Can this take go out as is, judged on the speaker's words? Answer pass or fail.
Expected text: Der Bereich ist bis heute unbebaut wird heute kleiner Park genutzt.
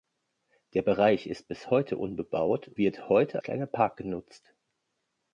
pass